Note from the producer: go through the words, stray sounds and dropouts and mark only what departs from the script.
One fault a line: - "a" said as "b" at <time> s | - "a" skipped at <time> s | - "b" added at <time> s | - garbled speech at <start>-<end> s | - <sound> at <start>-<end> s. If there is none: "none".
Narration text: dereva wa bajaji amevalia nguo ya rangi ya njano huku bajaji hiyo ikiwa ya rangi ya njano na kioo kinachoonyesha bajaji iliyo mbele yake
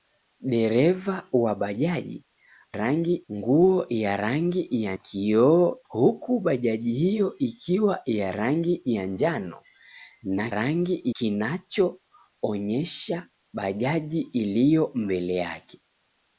- "amevalia" said as "rangi" at 2.7 s
- "njano" said as "kioo" at 4.9 s
- "kioo" said as "rangi" at 10.5 s